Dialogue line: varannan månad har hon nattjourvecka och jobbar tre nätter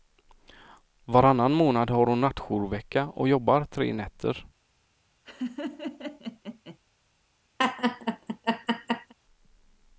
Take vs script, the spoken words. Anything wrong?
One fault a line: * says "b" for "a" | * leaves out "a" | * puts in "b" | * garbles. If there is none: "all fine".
all fine